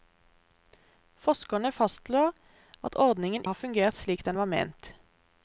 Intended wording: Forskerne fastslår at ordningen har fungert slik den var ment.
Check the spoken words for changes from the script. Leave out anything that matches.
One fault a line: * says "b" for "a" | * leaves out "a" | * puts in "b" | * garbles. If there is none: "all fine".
all fine